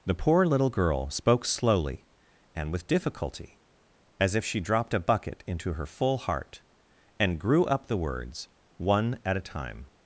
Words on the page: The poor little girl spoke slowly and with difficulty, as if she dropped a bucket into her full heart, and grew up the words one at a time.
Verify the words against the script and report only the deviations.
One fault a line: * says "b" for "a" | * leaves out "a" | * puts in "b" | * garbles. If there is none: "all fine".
all fine